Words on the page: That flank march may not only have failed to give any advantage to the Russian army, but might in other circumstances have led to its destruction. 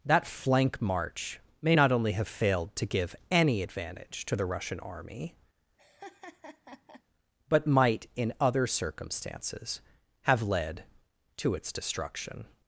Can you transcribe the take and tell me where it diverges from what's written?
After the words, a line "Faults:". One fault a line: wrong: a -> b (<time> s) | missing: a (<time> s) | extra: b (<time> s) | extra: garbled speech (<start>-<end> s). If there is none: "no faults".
That flank march may not only have failed to give any advantage to the Russian army, but might in other circumstances have led to its destruction.
Faults:
no faults